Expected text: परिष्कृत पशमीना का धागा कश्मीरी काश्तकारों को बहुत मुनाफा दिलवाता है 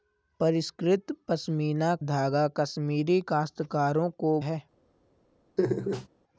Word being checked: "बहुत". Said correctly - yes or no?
no